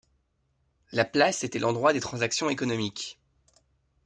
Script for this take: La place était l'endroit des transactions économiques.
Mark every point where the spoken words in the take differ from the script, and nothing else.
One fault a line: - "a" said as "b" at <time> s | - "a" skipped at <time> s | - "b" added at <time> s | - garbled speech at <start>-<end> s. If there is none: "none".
none